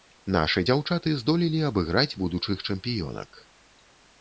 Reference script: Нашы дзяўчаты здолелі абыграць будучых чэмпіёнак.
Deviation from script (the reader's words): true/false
false